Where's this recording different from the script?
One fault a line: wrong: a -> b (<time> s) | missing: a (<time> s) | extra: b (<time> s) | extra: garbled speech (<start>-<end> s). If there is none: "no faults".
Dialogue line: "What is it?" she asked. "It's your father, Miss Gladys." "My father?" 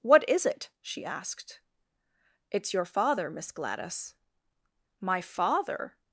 no faults